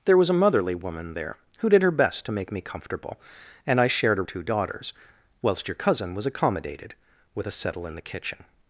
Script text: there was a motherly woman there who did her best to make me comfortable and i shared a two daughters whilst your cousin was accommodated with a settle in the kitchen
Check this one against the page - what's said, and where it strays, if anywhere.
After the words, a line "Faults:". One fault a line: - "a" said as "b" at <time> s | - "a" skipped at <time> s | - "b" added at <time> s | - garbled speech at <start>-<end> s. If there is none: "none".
there was a motherly woman there who did her best to make me comfortable and i shared a two daughters whilst your cousin was accommodated with a settle in the kitchen
Faults:
none